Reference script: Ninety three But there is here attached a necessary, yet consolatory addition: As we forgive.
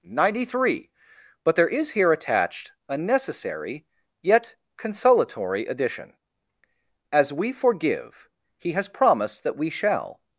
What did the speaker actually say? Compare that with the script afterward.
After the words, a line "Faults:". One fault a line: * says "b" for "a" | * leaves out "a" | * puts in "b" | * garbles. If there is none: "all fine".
Ninety three But there is here attached a necessary, yet consolatory addition: As we forgive. He has promised that we shall
Faults:
* puts in "He has promised that we shall"